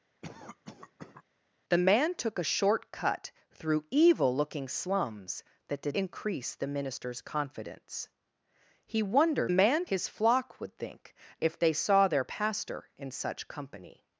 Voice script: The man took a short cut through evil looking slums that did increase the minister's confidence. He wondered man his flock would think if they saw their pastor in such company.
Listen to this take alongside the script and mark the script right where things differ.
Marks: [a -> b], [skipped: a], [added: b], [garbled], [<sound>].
[cough] The man took a short cut through evil looking slums that did increase the minister's confidence. He wondered man his flock would think if they saw their pastor in such company.